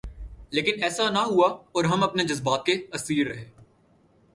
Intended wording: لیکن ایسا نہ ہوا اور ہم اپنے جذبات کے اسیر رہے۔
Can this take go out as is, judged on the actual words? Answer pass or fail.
pass